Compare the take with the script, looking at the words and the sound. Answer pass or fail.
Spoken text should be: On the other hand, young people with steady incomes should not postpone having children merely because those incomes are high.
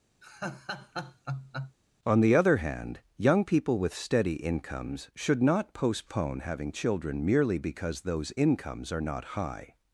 fail